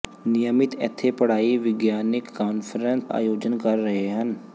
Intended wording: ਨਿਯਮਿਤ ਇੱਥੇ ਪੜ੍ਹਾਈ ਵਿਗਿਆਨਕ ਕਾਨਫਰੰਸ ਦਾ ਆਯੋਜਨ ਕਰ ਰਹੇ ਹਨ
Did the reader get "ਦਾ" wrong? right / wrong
wrong